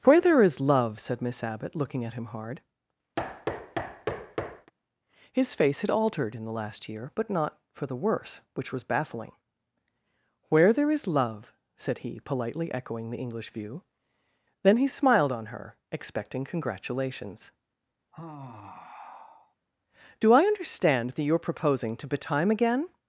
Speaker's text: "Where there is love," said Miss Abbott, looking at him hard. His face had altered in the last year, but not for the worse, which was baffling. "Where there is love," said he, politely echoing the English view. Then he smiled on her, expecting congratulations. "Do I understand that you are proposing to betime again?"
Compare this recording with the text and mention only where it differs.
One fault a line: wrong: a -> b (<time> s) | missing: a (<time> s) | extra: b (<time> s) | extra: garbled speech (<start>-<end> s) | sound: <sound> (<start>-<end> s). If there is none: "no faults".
sound: thud (3.2-4.7 s)
sound: sigh (18.1-19.6 s)